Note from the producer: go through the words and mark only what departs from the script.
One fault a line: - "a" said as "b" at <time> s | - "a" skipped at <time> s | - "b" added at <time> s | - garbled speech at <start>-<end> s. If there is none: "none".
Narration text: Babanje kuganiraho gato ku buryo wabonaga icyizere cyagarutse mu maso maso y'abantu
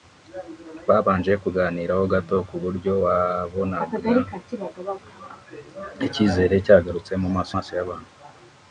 none